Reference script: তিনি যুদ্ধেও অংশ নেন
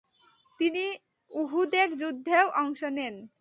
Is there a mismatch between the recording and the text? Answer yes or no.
yes